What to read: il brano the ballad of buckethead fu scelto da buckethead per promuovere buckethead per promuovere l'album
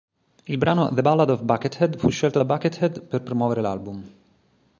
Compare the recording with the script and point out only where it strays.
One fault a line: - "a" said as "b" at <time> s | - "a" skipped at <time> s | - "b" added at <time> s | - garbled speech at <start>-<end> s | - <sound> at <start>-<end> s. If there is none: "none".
- "buckethead per promuovere" skipped at 3.6 s